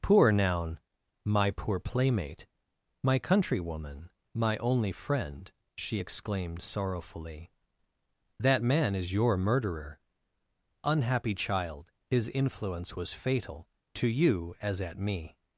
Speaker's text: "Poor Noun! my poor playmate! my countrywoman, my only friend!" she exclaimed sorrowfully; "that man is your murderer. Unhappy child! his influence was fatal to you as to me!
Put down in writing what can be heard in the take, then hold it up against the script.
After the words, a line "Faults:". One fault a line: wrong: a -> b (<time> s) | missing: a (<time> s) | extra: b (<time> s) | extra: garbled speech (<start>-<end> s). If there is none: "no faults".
"Poor Noun! my poor playmate! my countrywoman, my only friend!" she exclaimed sorrowfully; "that man is your murderer. Unhappy child! his influence was fatal to you as at me!
Faults:
wrong: to -> at (14.8 s)